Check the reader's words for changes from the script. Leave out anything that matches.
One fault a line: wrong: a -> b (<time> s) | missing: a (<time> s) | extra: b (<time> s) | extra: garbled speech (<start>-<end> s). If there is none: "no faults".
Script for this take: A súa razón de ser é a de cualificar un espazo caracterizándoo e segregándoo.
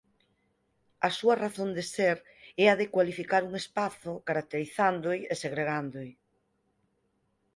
no faults